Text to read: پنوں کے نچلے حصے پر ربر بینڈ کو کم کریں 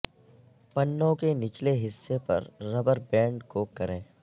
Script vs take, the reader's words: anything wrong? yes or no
yes